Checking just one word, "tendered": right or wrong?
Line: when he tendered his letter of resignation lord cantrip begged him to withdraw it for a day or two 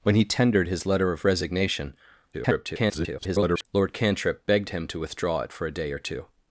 right